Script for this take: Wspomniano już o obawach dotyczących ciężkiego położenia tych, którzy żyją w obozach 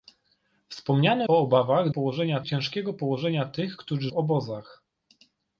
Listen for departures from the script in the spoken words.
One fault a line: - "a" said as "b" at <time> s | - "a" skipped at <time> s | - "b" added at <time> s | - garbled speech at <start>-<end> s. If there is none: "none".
- "już" skipped at 1.3 s
- "dotyczących" said as "położenia" at 1.9 s
- "żyją" skipped at 4.1 s